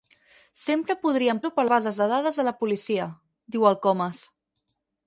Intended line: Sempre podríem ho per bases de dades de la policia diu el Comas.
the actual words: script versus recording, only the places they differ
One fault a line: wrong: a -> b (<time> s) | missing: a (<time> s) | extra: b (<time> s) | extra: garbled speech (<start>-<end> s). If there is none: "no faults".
no faults